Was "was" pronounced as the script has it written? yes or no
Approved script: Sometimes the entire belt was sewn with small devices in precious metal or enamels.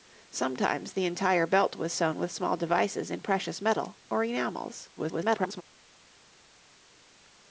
yes